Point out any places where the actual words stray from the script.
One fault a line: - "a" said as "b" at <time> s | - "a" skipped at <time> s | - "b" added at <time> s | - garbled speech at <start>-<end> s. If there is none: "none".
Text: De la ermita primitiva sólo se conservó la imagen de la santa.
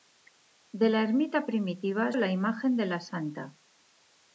- "sólo se conservó" skipped at 2.1 s